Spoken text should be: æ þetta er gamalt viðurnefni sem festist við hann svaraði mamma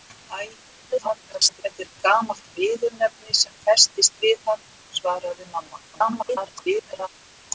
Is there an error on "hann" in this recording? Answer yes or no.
no